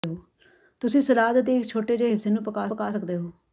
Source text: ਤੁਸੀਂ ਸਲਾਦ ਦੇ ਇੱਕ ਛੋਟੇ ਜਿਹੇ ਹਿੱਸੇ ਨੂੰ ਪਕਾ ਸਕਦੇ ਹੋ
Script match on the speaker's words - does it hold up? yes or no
no